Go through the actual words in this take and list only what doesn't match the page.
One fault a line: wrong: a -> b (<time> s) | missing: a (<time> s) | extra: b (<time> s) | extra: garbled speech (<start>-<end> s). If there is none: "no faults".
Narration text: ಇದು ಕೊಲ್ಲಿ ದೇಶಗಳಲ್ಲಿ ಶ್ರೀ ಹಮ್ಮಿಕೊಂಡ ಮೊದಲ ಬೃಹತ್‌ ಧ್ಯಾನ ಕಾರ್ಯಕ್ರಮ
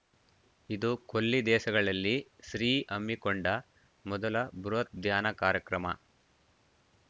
no faults